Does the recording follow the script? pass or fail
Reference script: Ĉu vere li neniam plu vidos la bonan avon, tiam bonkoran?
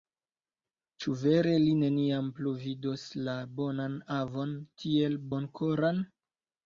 fail